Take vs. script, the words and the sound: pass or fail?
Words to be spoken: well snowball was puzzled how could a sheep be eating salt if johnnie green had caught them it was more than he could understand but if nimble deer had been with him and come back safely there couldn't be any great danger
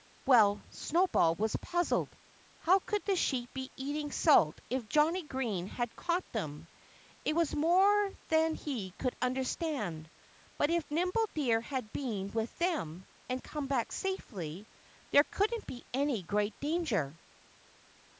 fail